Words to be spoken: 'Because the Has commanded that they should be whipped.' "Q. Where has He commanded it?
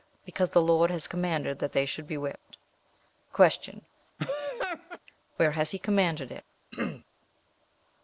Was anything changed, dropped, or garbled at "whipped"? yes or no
no